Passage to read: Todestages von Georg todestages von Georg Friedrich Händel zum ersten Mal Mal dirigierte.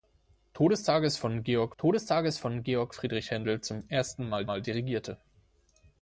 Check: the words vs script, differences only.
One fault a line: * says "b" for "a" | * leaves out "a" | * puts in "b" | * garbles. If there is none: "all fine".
all fine